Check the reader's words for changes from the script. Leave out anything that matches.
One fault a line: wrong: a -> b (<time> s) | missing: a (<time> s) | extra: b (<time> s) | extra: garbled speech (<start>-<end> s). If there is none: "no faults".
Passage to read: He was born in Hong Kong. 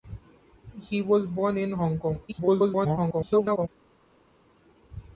extra: garbled speech (2.3-3.7 s)